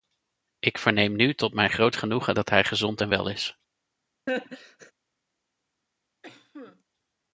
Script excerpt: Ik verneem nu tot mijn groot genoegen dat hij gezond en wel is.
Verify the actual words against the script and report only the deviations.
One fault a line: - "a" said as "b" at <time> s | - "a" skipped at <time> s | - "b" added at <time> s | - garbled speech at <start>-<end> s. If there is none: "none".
none